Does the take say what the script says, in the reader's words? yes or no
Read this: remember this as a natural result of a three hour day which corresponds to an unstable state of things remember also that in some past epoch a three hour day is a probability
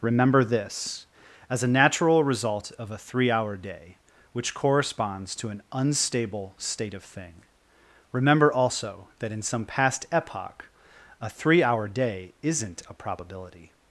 no